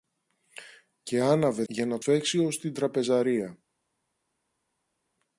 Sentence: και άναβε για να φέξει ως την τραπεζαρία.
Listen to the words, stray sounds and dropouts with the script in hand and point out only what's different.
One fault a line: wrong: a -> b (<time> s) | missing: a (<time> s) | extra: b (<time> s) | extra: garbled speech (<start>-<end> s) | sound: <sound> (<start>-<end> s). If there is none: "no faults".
no faults